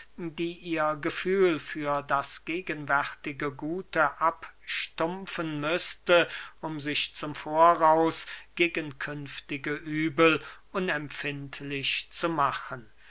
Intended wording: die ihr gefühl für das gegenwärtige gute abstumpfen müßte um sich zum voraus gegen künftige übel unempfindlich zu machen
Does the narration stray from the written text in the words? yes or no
no